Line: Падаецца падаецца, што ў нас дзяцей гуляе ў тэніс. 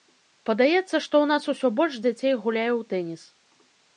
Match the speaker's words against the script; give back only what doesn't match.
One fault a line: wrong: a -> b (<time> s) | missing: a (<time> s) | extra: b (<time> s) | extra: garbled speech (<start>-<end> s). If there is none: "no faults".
missing: падаецца (0.8 s)
extra: усё больш (1.5 s)